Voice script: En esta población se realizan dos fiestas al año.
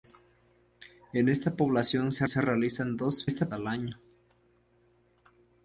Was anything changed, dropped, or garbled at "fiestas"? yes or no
yes